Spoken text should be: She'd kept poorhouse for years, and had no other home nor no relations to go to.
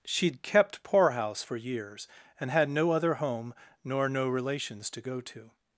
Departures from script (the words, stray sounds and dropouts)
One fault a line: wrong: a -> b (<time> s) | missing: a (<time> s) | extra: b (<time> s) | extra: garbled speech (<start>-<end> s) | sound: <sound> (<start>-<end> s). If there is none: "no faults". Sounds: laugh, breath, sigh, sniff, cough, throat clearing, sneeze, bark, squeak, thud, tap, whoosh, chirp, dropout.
no faults